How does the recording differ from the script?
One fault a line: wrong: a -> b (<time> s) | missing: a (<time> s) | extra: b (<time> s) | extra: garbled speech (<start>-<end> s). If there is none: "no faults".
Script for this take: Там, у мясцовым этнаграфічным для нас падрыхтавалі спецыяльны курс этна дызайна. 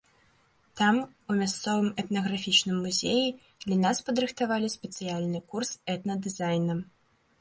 extra: музеі (2.9 s)